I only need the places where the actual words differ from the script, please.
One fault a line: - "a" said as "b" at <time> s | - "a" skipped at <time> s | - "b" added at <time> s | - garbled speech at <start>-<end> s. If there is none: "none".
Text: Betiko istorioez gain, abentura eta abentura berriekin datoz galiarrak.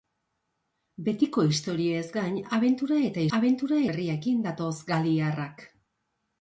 none